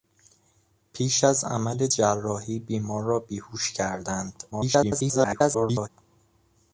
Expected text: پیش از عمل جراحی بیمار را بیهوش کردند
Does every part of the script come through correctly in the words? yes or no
no